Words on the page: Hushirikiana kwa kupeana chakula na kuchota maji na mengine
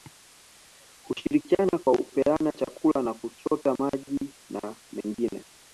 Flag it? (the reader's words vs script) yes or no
no